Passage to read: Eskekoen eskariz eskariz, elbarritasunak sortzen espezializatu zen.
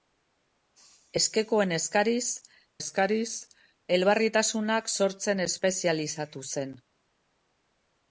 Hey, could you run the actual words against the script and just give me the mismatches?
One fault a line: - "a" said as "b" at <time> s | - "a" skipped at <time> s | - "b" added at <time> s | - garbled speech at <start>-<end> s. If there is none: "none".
none